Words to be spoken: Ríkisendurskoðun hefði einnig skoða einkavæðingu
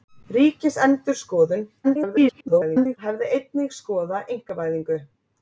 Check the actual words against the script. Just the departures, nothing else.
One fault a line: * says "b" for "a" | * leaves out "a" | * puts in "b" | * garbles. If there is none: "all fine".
* garbles